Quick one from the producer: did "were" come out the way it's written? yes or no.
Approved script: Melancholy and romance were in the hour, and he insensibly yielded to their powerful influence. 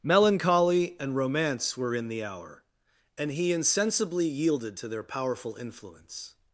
yes